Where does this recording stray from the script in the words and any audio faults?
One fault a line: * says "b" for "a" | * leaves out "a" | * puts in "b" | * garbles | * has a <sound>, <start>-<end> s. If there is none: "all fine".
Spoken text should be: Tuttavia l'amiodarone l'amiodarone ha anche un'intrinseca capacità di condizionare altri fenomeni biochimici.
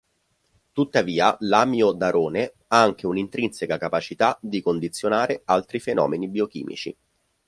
* leaves out "l'amiodarone"